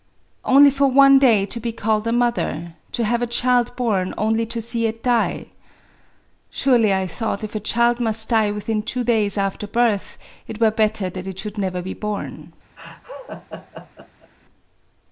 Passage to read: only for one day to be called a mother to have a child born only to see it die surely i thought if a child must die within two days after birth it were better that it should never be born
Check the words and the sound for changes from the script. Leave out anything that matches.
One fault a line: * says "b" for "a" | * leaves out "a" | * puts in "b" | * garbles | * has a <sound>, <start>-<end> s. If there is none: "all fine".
* has a laugh, 12.8-14.3 s